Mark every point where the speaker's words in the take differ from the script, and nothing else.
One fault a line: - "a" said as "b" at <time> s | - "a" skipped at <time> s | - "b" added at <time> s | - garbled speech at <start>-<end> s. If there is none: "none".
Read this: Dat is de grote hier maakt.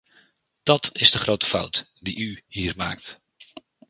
- "fout die u" added at 1.4 s